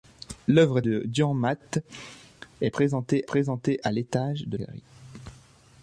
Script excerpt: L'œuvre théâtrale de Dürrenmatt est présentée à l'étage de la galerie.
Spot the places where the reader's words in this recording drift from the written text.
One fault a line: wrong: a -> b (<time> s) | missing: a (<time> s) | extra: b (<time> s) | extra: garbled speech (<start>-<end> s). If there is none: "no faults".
missing: théâtrale (0.8 s)
extra: présentée (3.2 s)
missing: la (4.6 s)